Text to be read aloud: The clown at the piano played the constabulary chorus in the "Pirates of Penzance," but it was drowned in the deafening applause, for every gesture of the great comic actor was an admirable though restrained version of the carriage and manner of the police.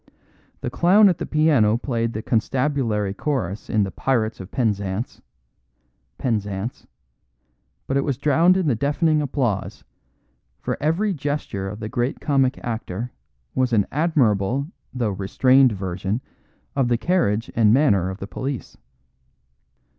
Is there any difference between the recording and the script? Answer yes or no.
yes